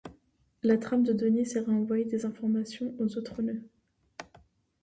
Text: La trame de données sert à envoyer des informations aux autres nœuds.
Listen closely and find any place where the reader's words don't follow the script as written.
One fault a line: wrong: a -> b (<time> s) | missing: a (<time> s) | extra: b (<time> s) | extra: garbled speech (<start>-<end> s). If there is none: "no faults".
no faults